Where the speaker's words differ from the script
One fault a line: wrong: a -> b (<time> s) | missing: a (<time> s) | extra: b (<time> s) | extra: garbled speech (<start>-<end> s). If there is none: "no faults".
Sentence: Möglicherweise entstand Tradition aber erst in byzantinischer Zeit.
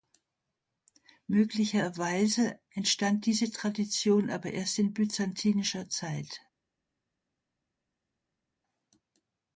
extra: diese (3.3 s)